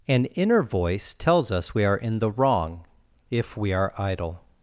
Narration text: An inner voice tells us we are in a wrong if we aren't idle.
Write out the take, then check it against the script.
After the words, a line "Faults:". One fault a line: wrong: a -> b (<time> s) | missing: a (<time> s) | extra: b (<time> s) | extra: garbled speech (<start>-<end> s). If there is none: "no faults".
An inner voice tells us we are in the wrong if we are idle.
Faults:
wrong: a -> the (2.2 s)
wrong: aren't -> are (3.7 s)